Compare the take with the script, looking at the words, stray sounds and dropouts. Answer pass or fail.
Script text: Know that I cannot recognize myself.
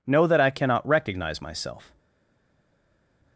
pass